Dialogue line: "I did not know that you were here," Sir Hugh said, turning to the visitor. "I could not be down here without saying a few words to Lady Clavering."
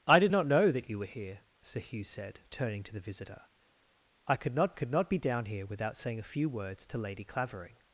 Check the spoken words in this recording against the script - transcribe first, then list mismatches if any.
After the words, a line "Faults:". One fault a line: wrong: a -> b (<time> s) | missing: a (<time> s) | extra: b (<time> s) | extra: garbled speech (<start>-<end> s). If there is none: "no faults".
"I did not know that you were here," Sir Hugh said, turning to the visitor. "I could not could not be down here without saying a few words to Lady Clavering."
Faults:
extra: could not (4.7 s)